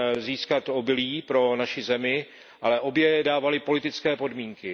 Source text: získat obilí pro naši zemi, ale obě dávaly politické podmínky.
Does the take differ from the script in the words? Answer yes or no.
no